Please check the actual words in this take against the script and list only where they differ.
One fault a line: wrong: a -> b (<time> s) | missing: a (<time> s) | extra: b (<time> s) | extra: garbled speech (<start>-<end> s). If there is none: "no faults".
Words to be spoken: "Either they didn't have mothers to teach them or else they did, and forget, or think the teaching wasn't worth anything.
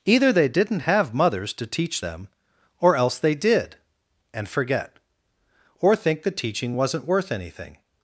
no faults